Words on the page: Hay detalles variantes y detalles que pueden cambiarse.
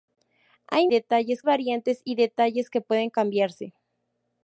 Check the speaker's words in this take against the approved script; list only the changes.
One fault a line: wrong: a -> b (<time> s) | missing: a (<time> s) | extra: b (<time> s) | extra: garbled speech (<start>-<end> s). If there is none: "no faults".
no faults